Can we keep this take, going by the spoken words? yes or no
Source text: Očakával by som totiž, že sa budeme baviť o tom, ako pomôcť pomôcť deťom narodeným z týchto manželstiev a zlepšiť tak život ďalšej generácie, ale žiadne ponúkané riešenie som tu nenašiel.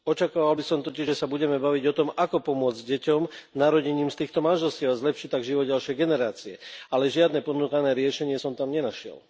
no